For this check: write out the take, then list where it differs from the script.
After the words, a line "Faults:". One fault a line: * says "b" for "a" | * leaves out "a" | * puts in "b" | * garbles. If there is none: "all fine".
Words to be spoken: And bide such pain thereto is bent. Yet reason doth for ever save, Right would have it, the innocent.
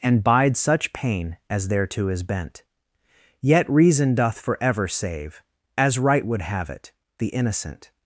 And bide such pain as thereto is bent. Yet reason doth for ever save, As right would have it, the innocent.
Faults:
* puts in "as"
* puts in "As"